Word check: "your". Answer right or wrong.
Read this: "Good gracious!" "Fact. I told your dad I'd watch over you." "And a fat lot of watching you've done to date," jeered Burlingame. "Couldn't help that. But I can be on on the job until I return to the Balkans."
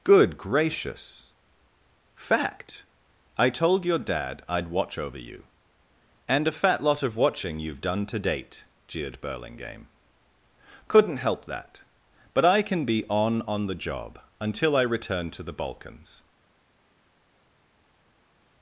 right